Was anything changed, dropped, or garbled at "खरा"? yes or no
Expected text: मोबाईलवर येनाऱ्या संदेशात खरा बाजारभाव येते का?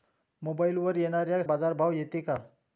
yes